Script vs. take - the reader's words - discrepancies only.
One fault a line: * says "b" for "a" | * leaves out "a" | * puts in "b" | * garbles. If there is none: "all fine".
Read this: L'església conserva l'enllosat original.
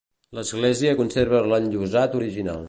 all fine